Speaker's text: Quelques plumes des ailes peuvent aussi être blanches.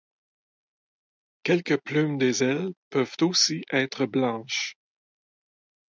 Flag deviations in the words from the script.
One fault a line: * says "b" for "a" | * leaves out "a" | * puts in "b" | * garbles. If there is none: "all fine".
all fine